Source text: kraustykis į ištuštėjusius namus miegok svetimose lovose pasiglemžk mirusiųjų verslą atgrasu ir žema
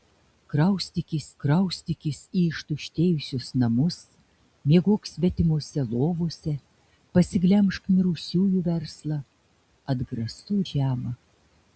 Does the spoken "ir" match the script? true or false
false